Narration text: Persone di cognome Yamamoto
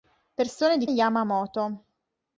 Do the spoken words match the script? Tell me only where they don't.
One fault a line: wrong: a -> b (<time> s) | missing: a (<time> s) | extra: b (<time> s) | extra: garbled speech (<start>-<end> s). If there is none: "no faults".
missing: cognome (0.9 s)